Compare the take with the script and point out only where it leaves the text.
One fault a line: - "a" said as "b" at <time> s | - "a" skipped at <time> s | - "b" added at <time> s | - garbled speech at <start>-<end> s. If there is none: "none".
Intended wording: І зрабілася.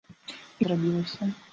none